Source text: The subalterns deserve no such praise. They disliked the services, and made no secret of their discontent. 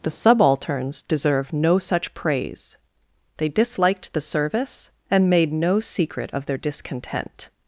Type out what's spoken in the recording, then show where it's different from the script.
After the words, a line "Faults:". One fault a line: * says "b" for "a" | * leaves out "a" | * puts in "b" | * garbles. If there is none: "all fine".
The subalterns deserve no such praise. They disliked the service, and made no secret of their discontent.
Faults:
* says "service" for "services"